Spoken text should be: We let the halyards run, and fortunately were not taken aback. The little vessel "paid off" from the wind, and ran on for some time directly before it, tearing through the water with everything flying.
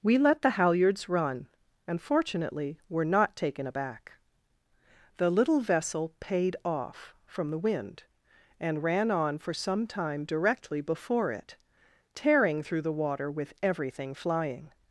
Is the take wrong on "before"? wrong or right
right